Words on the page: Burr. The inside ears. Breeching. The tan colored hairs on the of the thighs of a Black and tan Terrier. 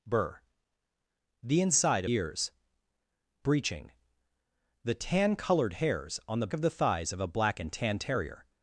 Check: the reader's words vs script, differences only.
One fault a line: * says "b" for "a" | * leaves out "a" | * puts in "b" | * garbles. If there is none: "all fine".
all fine